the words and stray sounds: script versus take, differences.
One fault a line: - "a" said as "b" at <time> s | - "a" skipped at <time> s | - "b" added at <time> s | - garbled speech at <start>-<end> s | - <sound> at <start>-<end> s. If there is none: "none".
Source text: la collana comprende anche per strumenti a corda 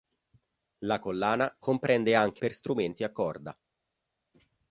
none